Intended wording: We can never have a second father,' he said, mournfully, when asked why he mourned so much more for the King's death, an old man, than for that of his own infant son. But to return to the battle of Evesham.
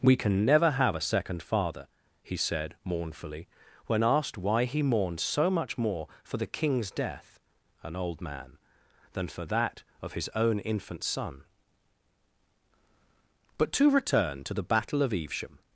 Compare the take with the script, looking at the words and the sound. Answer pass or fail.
pass